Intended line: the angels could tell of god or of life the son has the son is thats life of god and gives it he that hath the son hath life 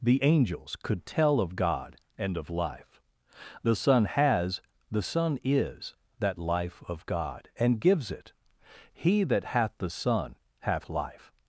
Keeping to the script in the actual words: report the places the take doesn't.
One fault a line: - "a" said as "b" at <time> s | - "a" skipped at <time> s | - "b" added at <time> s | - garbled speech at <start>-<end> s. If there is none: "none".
- "or" said as "and" at 2.2 s
- "thats" said as "that" at 6.2 s